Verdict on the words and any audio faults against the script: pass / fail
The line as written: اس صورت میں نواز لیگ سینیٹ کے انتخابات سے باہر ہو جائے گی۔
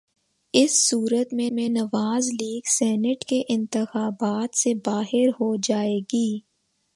fail